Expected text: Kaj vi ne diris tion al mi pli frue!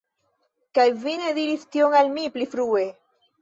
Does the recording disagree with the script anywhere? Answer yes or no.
no